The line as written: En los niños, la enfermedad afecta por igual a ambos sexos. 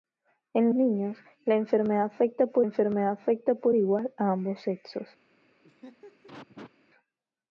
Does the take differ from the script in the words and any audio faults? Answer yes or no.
yes